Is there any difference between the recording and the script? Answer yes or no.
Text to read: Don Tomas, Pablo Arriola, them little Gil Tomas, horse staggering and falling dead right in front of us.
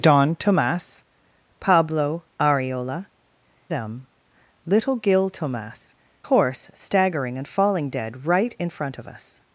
no